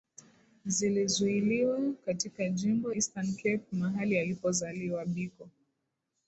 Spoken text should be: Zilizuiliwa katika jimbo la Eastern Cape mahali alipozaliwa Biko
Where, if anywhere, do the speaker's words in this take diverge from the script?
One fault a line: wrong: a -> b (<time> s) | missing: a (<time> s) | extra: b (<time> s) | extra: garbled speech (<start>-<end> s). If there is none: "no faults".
missing: la (2.9 s)